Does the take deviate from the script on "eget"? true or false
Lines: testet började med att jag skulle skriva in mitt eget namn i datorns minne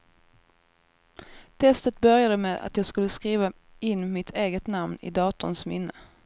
false